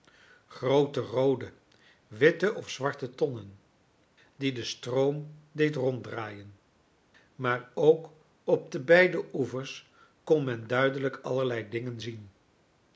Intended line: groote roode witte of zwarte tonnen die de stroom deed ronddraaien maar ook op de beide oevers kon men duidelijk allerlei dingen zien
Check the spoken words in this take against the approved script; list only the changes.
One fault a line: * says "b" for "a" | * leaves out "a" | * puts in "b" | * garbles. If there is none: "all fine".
all fine